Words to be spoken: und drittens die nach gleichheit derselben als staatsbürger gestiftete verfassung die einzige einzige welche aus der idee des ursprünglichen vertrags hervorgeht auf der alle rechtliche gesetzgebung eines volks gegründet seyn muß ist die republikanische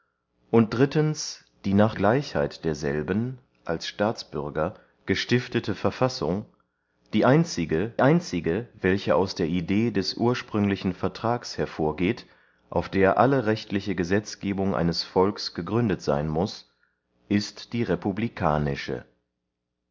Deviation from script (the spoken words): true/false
false